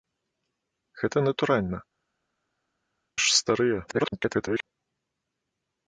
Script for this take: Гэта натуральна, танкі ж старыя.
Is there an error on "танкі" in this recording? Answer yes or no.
yes